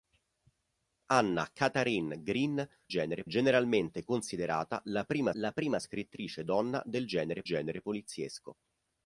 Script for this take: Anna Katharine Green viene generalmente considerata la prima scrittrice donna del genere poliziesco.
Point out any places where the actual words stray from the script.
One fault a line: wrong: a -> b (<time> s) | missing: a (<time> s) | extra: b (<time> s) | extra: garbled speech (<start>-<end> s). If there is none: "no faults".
wrong: viene -> genere (2.9 s)
extra: la prima (5.3 s)
extra: genere (7.4 s)